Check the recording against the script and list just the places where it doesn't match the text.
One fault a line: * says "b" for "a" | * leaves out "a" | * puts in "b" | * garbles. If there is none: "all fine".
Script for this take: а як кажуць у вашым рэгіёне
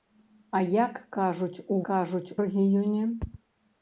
* says "кажуць" for "вашым"